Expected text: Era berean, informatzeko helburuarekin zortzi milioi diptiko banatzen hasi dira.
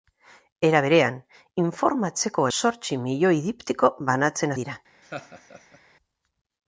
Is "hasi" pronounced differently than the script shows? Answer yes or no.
yes